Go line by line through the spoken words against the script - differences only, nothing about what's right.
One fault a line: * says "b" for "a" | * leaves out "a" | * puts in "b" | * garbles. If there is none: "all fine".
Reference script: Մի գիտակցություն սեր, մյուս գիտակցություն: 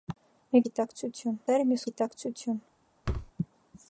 all fine